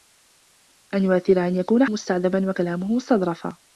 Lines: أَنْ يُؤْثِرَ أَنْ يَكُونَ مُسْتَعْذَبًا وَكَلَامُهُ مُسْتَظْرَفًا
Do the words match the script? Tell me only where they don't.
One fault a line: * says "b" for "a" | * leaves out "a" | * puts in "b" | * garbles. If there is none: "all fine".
all fine